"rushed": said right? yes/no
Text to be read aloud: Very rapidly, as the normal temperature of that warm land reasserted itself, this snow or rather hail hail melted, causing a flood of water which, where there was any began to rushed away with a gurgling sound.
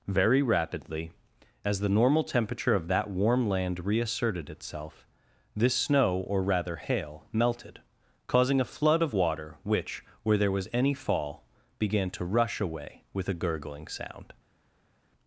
no